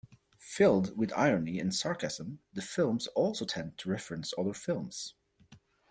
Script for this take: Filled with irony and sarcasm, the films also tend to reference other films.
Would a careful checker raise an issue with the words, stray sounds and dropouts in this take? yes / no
no